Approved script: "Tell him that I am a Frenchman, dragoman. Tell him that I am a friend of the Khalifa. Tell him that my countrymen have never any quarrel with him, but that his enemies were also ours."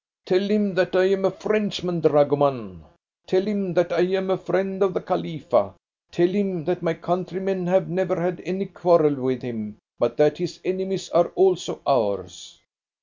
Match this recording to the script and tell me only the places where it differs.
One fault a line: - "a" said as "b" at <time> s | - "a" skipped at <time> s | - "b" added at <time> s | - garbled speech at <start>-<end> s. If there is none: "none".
- "had" added at 8.2 s
- "were" said as "are" at 11.1 s